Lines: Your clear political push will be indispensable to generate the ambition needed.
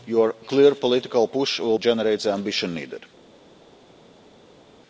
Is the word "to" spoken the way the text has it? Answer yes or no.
no